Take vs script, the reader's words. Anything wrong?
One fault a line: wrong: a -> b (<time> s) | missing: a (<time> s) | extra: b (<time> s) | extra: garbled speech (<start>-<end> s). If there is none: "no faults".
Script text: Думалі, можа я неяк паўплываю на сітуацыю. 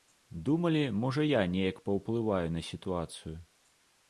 no faults